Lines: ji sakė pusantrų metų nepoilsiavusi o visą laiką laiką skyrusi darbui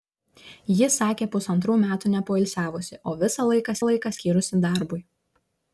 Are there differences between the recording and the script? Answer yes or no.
no